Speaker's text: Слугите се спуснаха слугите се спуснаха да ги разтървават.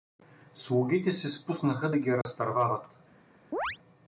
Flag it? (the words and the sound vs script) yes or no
yes